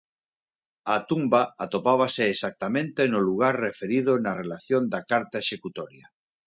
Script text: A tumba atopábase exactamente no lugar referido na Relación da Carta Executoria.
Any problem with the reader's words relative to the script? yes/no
no